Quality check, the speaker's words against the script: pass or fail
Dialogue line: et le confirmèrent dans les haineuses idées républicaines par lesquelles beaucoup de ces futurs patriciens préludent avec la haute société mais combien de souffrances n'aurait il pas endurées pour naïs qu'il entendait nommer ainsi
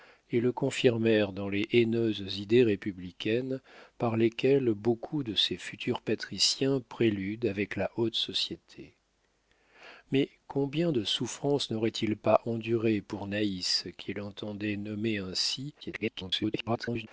fail